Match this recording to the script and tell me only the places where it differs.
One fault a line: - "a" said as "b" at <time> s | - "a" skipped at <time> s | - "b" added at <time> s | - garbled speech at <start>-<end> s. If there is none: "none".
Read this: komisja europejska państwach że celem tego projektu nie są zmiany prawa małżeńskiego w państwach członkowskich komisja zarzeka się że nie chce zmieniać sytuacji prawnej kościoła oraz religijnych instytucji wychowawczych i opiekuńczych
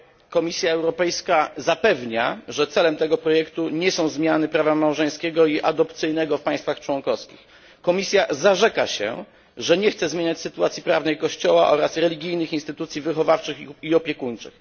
- "państwach" said as "zapewnia" at 1.6 s
- "i adopcyjnego" added at 5.5 s